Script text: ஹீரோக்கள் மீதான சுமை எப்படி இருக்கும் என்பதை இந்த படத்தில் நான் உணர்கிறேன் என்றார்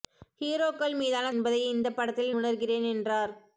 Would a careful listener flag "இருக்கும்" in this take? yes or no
yes